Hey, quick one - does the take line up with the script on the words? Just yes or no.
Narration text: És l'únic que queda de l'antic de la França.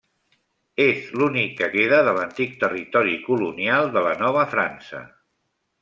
no